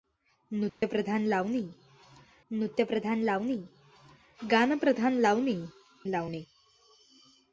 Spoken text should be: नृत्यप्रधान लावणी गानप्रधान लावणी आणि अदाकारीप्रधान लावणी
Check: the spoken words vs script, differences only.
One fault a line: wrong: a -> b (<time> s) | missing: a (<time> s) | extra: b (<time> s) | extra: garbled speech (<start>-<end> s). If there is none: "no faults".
wrong: गानप्रधान -> नृत्यप्रधान (2.5 s)
wrong: आणि अदाकारीप्रधान -> गानप्रधान लावणी (4.4 s)